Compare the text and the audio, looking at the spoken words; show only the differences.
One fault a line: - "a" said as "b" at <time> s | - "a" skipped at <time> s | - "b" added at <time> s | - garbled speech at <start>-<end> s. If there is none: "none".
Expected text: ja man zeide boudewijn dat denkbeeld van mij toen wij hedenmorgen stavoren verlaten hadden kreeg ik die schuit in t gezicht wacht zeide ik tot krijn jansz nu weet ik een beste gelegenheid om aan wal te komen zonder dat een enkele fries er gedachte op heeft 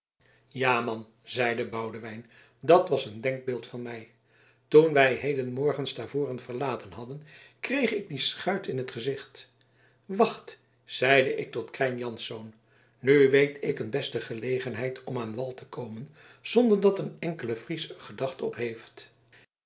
- "was een" added at 2.9 s